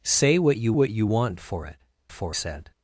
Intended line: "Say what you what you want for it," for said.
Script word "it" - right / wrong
right